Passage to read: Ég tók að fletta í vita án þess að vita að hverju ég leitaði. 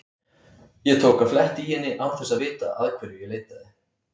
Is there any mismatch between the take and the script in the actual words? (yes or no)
yes